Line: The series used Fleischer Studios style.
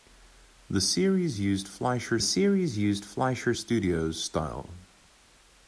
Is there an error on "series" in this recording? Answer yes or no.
no